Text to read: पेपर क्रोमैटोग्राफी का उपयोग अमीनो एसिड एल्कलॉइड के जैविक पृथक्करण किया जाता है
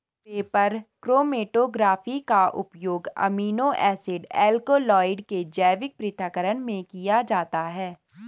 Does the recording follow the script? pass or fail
fail